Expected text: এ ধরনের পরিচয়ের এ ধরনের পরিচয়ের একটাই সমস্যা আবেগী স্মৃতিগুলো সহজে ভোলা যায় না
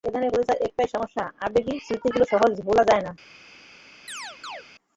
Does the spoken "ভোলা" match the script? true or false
true